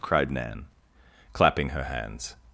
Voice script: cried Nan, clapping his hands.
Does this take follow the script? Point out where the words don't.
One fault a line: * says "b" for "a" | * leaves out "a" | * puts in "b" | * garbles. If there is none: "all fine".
* says "her" for "his"